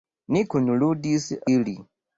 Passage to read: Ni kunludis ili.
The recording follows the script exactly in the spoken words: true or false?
true